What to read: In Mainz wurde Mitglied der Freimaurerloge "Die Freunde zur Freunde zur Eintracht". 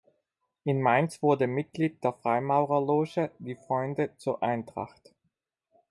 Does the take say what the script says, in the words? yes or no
no